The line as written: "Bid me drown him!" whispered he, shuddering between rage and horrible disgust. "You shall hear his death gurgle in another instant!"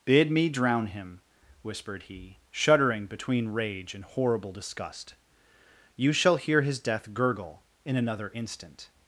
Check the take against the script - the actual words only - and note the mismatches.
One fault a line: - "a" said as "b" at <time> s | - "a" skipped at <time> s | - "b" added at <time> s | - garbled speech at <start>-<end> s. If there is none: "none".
none